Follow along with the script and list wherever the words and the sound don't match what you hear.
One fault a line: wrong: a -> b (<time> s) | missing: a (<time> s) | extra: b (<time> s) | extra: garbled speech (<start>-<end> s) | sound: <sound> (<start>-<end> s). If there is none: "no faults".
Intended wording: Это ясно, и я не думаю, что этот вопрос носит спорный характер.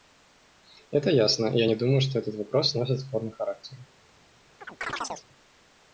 sound: chirp (4.6-5.3 s)